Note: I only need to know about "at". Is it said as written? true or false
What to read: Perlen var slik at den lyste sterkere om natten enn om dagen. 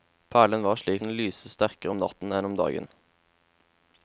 false